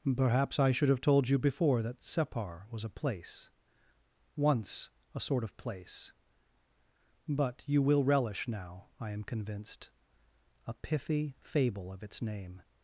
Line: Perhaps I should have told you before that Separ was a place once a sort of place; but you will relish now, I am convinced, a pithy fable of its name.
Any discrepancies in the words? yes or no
no